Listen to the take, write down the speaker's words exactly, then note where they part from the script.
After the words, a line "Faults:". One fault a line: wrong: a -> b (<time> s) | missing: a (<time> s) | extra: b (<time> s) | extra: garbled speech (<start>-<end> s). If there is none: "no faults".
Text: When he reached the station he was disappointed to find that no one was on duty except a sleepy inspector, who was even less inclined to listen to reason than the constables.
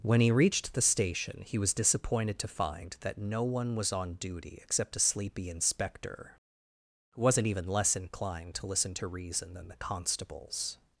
When he reached the station he was disappointed to find that no one was on duty except a sleepy inspector, who wasn't even less inclined to listen to reason than the constables.
Faults:
wrong: was -> wasn't (7.2 s)